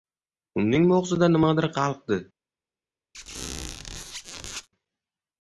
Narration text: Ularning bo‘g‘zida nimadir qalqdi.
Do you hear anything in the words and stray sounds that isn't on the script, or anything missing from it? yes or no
yes